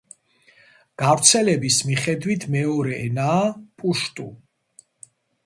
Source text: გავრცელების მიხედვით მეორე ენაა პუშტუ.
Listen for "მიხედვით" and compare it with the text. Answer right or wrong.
right